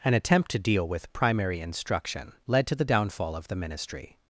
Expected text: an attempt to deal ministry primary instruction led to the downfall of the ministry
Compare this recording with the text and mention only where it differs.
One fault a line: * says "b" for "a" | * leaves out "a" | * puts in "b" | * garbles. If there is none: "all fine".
* says "with" for "ministry"